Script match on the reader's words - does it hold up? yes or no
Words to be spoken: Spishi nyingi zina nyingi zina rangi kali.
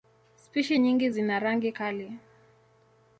no